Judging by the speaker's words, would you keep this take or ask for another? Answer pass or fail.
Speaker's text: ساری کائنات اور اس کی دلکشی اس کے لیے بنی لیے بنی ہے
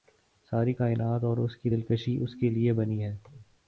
fail